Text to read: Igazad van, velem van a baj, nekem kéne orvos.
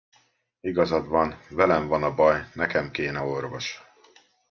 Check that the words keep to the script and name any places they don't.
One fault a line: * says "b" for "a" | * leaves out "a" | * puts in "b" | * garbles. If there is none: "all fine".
all fine